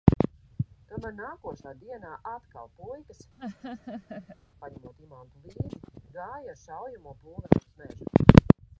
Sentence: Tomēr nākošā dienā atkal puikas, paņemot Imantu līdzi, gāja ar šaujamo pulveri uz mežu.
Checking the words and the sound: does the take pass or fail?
fail